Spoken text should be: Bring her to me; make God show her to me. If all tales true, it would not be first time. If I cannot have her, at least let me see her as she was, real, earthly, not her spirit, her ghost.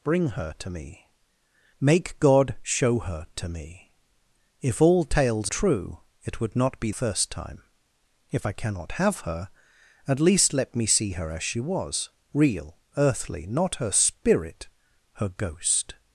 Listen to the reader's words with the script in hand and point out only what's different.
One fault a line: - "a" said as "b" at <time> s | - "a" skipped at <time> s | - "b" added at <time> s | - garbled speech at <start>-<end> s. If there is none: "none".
none